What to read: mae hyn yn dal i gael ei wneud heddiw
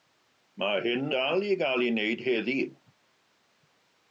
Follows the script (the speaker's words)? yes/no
no